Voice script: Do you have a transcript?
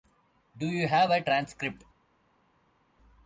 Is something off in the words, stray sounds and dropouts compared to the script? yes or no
no